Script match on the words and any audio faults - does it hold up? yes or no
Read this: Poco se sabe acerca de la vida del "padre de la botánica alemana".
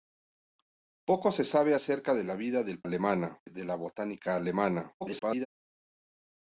no